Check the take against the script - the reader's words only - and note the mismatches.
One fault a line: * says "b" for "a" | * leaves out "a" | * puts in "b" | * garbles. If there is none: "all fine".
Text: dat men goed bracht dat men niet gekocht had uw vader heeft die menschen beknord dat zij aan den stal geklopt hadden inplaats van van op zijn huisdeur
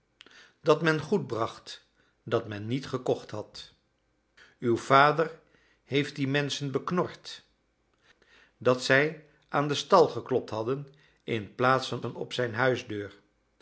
all fine